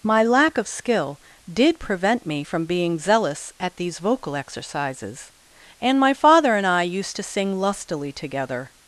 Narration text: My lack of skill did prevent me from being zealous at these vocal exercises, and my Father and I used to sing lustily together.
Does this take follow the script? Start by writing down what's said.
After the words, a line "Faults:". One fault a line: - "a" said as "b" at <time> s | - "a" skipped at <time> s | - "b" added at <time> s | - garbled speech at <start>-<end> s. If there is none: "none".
My lack of skill did prevent me from being zealous at these vocal exercises, and my Father and I used to sing lustily together.
Faults:
none